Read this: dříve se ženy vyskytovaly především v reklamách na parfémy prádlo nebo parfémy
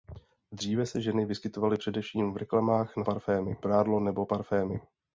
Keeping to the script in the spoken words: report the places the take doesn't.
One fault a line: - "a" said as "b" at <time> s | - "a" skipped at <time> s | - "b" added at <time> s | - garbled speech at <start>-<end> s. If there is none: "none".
none